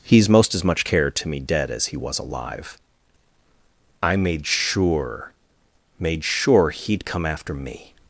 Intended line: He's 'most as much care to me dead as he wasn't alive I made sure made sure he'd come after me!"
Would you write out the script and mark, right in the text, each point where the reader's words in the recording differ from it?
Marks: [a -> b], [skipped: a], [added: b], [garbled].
He's 'most as much care to me dead as he [wasn't -> was] alive I made sure made sure he'd come after me!"